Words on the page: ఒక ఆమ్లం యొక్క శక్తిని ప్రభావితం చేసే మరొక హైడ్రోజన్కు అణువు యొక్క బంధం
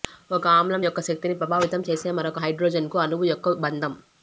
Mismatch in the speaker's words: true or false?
false